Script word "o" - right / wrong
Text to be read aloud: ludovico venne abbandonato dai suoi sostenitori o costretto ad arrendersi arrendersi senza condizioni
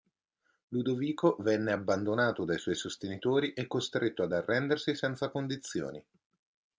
wrong